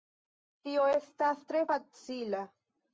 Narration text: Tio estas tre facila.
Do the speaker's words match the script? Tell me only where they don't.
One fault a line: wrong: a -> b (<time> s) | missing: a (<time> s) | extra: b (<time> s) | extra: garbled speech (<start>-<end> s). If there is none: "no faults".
no faults